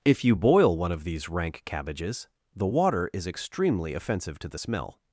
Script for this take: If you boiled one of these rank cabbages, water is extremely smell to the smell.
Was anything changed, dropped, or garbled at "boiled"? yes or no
yes